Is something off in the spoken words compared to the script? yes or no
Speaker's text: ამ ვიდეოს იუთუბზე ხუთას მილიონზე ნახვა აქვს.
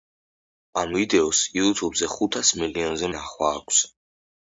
no